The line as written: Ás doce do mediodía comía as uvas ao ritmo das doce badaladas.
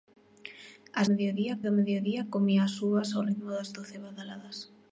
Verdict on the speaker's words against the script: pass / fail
fail